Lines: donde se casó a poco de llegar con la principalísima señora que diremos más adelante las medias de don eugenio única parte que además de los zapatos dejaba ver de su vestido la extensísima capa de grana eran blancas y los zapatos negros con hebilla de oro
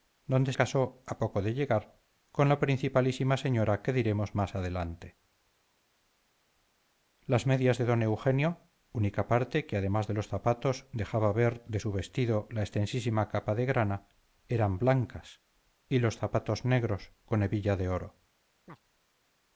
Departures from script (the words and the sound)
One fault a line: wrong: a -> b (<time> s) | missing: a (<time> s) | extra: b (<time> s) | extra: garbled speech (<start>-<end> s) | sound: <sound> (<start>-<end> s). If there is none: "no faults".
missing: se (0.5 s)
sound: chirp (18.7-18.8 s)